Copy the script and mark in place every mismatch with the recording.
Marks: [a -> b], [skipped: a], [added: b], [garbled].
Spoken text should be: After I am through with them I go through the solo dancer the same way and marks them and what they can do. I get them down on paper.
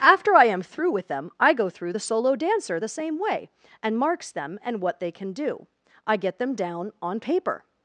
After I am through with them I go through the solo dancer the same way and marks them and what they can do. I get them down on paper.